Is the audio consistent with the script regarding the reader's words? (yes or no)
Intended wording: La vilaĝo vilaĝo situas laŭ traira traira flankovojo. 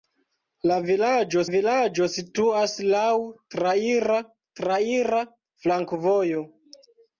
yes